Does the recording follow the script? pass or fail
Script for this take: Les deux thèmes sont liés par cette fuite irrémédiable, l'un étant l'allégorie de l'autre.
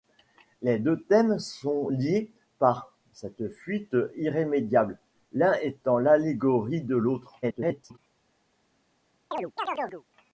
fail